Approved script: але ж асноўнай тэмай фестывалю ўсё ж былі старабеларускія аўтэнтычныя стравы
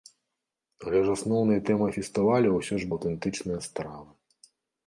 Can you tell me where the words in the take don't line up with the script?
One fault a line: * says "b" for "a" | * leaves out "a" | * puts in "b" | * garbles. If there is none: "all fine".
* leaves out "былі старабеларускія"